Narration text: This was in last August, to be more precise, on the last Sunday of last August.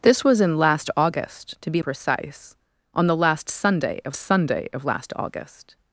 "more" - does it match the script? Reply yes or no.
no